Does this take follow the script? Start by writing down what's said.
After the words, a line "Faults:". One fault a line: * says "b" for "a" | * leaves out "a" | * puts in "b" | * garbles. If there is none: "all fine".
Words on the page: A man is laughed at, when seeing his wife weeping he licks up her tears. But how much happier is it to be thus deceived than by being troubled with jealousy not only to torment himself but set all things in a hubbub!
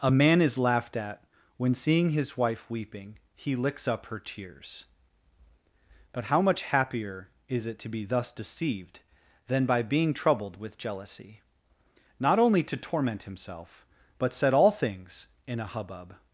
A man is laughed at, when seeing his wife weeping he licks up her tears. But how much happier is it to be thus deceived than by being troubled with jealousy not only to torment himself but set all things in a hubbub!
Faults:
all fine